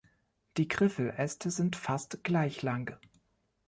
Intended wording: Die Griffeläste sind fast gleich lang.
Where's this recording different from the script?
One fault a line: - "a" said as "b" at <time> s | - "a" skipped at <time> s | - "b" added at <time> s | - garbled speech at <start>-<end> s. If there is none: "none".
none